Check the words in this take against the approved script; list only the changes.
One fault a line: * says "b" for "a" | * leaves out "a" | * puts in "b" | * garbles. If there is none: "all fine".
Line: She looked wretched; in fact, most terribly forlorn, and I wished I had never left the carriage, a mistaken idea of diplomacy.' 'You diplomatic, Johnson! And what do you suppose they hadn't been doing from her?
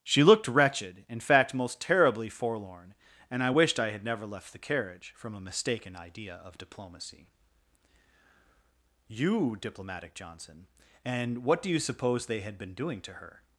* puts in "from"
* says "had" for "hadn't"
* says "to" for "from"